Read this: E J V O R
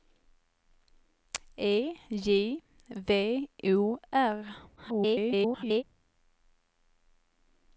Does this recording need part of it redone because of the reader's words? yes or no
yes